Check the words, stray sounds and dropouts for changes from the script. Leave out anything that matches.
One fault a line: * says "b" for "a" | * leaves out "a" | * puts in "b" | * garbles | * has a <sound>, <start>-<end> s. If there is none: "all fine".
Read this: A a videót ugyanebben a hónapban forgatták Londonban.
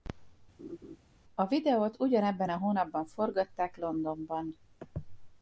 * has a laugh, 0.6-1.0 s
* leaves out "a"